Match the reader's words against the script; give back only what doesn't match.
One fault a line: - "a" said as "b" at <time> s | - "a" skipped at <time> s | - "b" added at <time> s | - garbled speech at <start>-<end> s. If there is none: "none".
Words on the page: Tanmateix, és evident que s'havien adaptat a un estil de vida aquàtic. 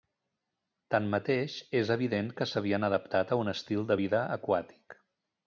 none